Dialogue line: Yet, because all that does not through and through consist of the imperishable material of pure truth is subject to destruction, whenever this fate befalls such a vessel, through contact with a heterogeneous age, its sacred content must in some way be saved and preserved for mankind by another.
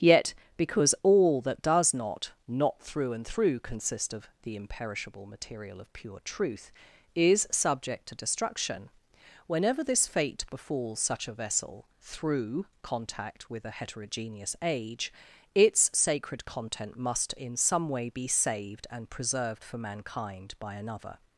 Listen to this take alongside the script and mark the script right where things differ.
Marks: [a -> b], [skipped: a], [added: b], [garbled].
Yet, because all that does not [added: not] through and through consist of the imperishable material of pure truth is subject to destruction, whenever this fate befalls such a vessel, through contact with a heterogeneous age, its sacred content must in some way be saved and preserved for mankind by another.